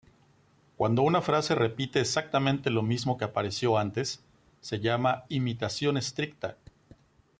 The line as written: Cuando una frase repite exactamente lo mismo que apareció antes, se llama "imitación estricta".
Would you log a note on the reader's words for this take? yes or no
no